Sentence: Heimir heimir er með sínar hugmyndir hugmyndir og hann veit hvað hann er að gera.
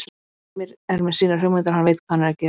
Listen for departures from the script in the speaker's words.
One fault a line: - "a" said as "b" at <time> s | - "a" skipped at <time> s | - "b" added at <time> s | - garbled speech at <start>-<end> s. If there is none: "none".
- "heimir" skipped at 0.7 s
- "hugmyndir" skipped at 1.7 s